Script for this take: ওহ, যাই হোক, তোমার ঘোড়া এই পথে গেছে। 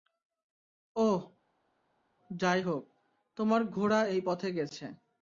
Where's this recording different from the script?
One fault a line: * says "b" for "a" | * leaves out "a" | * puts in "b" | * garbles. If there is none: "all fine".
all fine